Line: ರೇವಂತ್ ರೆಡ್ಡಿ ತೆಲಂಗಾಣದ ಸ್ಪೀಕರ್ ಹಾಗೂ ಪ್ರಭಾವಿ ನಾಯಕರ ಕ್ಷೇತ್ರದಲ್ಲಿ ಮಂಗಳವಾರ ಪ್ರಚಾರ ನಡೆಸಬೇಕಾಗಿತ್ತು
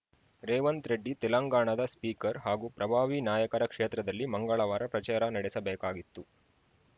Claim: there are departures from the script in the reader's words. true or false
false